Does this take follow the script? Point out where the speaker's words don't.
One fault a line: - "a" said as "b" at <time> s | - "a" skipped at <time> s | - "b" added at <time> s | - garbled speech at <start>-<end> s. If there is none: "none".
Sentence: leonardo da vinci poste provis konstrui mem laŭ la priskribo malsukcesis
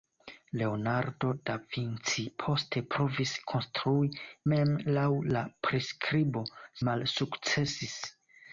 none